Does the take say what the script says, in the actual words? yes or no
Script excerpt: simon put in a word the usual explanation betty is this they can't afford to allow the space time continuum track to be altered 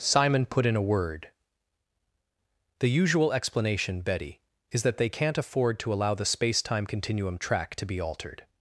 no